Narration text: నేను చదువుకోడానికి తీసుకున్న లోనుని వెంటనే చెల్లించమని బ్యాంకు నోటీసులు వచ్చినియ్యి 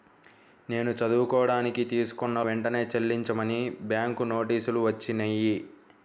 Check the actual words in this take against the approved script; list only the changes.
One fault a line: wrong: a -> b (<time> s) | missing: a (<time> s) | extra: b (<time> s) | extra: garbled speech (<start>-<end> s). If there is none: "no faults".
missing: లోనుని (2.4 s)